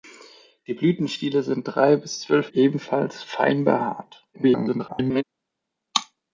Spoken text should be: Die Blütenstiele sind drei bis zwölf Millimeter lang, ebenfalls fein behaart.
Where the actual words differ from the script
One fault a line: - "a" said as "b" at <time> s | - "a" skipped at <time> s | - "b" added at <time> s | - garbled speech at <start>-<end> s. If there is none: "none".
- "Millimeter lang" skipped at 2.5 s
- garbled speech at 4.3-5.2 s